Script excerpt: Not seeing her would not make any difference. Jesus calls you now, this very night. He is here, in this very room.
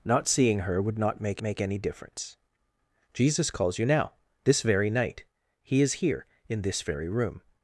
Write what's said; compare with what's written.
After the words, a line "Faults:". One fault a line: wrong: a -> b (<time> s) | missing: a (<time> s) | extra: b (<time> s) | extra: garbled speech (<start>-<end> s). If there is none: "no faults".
Not seeing her would not make make any difference. Jesus calls you now, this very night. He is here, in this very room.
Faults:
extra: make (1.4 s)